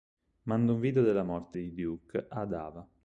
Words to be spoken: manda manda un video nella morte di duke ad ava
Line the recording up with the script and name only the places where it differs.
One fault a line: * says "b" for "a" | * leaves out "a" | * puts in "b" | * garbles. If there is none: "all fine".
* leaves out "manda"
* says "della" for "nella"